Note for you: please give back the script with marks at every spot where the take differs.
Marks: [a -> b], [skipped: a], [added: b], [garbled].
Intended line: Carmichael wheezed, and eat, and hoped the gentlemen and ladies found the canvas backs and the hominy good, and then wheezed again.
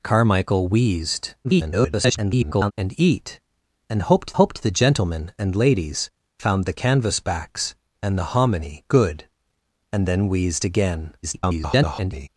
Carmichael wheezed, [garbled] and eat, and hoped [added: hoped] the gentlemen and ladies found the canvas backs and the hominy good, and then wheezed again. [garbled]